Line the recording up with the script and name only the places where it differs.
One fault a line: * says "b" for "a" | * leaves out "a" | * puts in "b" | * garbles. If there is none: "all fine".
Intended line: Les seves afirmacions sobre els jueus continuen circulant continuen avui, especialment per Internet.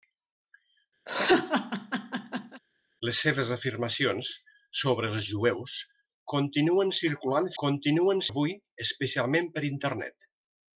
all fine